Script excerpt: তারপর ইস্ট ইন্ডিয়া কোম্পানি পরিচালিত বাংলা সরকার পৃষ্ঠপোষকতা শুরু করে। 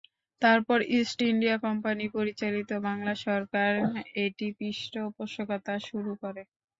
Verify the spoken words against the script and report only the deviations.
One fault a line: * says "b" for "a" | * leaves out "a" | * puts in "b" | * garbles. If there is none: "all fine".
* puts in "এটি"